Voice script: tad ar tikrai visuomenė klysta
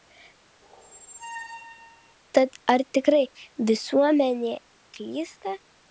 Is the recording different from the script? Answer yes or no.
no